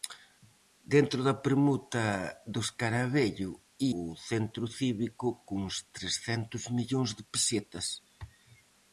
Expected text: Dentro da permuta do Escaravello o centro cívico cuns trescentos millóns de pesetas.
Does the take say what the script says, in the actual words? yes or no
yes